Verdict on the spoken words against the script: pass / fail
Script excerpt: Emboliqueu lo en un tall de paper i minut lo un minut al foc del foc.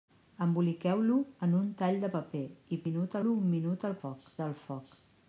pass